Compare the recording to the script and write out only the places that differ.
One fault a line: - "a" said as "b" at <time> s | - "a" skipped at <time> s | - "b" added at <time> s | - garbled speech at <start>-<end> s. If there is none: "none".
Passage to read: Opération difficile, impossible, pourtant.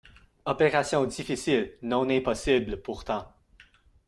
- "non" added at 1.8 s